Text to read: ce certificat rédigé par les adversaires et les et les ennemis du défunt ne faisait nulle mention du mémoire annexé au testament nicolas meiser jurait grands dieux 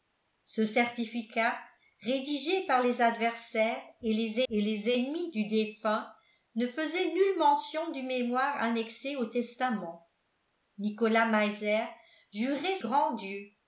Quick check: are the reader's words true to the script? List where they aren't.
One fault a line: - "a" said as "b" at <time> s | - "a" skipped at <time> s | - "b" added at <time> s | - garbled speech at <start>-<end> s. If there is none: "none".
none